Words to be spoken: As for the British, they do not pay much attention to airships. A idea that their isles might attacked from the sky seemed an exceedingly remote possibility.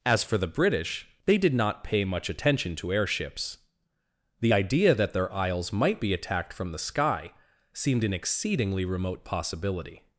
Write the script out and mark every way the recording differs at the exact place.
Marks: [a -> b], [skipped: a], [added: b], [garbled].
As for the British, they [do -> did] not pay much attention to airships. [A -> The] idea that their isles might [added: be] attacked from the sky seemed an exceedingly remote possibility.